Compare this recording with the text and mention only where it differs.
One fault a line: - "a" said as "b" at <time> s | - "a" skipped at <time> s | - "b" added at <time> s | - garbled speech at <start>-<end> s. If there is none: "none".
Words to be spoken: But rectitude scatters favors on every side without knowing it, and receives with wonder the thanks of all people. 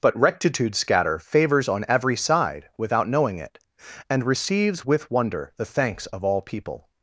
- "scatters" said as "scatter" at 0.8 s